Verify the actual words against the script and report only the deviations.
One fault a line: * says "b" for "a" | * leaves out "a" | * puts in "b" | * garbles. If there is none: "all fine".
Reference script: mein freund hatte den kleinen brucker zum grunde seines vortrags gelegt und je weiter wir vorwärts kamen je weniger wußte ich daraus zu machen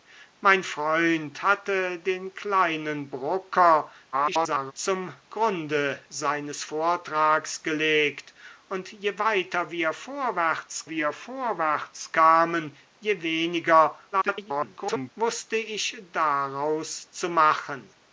* garbles
* puts in "wir vorwärts"
* garbles